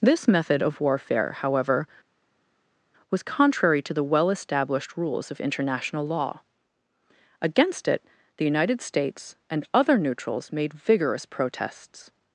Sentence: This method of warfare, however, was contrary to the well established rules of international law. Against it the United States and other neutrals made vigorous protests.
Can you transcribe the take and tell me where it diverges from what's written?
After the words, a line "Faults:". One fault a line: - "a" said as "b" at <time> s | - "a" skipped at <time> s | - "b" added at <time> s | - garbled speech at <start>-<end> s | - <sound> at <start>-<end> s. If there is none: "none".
This method of warfare, however, was contrary to the well established rules of international law. Against it the United States and other neutrals made vigorous protests.
Faults:
none